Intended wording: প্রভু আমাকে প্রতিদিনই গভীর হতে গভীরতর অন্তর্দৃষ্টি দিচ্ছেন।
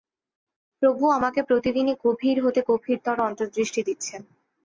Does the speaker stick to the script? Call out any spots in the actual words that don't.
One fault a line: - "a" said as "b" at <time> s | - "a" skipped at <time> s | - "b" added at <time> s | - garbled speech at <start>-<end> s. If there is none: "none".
none